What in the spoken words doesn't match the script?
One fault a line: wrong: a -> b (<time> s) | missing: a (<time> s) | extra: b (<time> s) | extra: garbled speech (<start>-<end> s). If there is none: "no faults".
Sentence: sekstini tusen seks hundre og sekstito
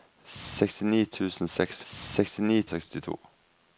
wrong: hundre -> sekstini (1.9 s)